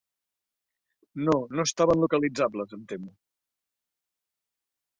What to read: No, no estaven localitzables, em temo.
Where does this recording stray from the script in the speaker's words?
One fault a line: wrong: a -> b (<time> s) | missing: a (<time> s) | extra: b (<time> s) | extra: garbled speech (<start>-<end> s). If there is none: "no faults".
no faults